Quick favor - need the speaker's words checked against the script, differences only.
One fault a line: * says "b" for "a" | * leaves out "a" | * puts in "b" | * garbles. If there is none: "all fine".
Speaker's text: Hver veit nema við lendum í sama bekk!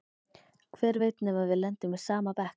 all fine